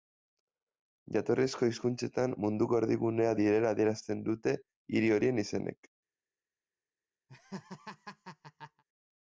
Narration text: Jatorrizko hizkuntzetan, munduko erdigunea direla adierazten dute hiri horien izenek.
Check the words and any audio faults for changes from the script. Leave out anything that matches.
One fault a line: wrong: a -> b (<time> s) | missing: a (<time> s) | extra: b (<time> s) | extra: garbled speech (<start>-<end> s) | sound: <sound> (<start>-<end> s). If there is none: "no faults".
sound: laugh (7.3-8.8 s)